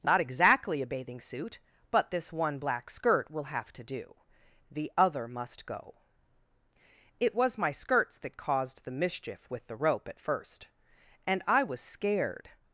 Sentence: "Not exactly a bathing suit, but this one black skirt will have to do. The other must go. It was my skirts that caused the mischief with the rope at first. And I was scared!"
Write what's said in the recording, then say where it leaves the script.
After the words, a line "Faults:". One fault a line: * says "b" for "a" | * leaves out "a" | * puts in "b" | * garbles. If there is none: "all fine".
"Not exactly a bathing suit, but this one black skirt will have to do. The other must go. It was my skirts that caused the mischief with the rope at first. And I was scared!"
Faults:
all fine